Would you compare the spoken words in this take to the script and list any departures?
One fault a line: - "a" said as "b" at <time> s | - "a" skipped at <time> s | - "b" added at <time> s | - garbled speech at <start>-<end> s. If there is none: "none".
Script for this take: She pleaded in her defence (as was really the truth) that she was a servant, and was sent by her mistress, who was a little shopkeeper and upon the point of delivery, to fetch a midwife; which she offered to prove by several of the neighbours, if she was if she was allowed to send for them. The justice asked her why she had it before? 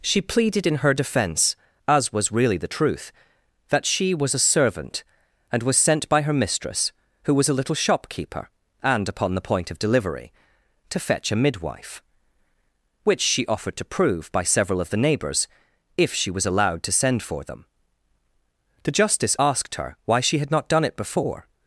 - "if she was" skipped at 16.5 s
- "not done" added at 20.5 s